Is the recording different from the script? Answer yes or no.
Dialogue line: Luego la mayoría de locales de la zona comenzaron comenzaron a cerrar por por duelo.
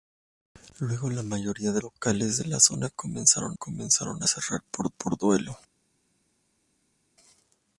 no